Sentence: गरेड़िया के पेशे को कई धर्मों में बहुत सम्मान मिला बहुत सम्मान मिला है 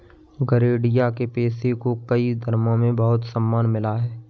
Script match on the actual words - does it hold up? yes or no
no